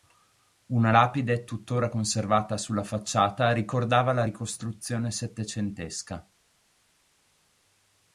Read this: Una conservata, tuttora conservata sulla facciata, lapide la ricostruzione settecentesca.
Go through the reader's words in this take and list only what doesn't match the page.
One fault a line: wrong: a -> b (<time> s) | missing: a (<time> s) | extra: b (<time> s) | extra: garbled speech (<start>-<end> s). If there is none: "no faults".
wrong: conservata -> lapide (0.9 s)
wrong: lapide -> ricordava (3.5 s)